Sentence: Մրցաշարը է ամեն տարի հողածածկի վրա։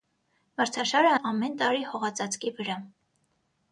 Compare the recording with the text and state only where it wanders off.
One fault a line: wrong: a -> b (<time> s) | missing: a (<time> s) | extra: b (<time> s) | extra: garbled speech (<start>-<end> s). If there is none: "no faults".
no faults